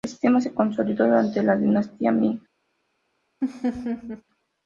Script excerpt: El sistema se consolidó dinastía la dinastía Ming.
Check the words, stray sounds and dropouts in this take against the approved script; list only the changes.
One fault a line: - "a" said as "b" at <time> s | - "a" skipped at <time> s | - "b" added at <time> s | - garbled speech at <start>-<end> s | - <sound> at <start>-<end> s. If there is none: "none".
- "dinastía" said as "durante" at 1.1 s
- laugh at 3.4-4.2 s